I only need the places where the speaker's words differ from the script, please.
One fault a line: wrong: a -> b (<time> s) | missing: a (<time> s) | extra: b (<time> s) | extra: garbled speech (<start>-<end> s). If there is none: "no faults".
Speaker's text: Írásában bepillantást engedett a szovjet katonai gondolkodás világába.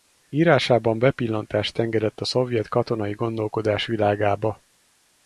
no faults